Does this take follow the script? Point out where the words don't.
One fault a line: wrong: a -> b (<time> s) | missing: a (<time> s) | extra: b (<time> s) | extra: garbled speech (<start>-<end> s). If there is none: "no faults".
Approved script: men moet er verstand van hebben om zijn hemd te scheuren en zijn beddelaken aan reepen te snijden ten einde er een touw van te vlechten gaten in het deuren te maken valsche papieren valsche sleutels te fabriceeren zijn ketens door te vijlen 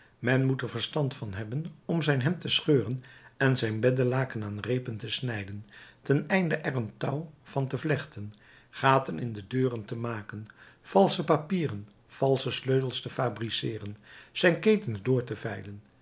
wrong: het -> de (9.3 s)